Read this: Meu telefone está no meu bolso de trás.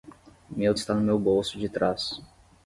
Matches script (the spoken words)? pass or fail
fail